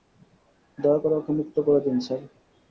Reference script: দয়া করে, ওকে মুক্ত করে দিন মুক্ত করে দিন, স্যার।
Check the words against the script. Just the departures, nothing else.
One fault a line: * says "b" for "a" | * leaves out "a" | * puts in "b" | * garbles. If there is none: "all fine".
* leaves out "মুক্ত করে দিন"